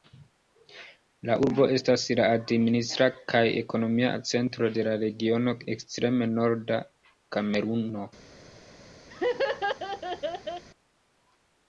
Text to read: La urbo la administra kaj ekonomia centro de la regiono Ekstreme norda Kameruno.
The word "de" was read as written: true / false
true